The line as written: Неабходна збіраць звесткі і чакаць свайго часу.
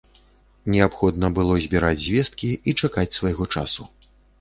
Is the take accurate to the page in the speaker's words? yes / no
no